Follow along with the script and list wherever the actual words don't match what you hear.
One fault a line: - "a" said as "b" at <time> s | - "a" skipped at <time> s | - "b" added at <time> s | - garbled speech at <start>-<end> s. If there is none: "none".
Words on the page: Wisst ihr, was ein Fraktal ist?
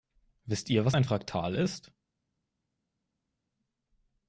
none